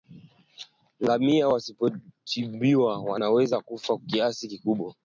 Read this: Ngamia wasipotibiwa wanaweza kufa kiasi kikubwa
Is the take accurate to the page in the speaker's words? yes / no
yes